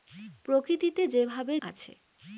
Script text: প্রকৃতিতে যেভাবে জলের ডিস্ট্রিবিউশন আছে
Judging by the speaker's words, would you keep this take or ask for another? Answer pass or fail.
fail